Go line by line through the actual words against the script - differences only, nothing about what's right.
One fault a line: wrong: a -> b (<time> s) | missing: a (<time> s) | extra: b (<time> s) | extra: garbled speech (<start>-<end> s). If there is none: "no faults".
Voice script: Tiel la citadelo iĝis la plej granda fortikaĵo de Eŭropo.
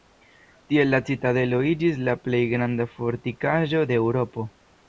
no faults